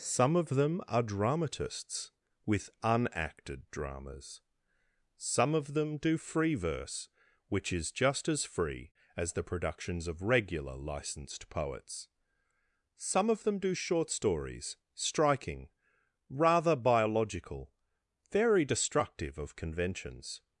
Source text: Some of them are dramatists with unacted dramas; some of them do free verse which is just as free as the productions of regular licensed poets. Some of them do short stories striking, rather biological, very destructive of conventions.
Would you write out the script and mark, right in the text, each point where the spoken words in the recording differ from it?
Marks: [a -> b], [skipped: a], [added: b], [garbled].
Some of them are dramatists with unacted dramas; some of them do free verse which is just as free as the productions of regular licensed poets. Some of them do short stories striking, rather biological, very destructive of conventions.